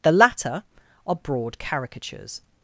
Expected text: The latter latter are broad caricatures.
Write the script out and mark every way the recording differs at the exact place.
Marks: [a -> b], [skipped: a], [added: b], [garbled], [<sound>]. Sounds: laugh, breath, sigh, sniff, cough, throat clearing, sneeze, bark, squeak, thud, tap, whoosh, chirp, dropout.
The latter [skipped: latter] are broad caricatures.